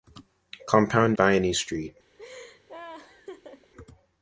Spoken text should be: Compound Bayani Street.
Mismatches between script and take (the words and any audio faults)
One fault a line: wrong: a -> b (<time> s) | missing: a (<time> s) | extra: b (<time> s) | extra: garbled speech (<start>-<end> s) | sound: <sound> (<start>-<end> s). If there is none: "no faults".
sound: laugh (2.2-3.7 s)